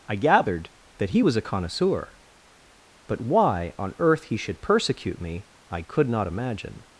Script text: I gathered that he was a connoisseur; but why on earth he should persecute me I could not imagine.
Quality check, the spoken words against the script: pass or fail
pass